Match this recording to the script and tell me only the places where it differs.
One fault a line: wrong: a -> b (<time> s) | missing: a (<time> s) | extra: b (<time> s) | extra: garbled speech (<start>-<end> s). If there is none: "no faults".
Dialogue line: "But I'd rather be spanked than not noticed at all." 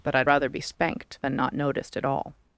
no faults